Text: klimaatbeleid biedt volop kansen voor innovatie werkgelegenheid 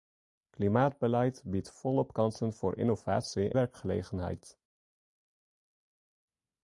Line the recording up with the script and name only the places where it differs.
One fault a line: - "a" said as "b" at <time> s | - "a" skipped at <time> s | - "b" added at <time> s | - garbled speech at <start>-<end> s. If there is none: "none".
none